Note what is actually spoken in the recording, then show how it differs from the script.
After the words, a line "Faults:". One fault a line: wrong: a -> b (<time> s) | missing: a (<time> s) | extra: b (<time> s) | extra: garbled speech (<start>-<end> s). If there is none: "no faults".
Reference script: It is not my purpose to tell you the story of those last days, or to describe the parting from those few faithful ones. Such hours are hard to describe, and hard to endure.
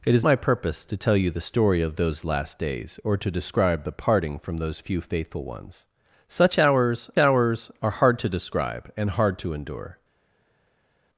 It is my purpose to tell you the story of those last days, or to describe the parting from those few faithful ones. Such hours hours are hard to describe, and hard to endure.
Faults:
missing: not (0.2 s)
extra: hours (7.2 s)